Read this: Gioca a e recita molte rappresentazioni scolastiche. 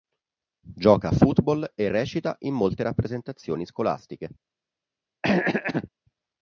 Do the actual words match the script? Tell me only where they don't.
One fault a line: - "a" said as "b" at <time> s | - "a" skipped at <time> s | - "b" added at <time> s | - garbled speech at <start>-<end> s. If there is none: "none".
- "football" added at 1.1 s
- "in" added at 2.4 s